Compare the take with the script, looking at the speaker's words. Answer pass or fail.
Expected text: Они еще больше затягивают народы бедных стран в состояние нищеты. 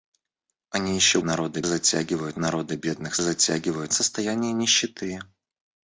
fail